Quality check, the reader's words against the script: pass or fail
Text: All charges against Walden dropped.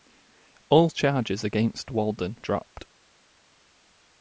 pass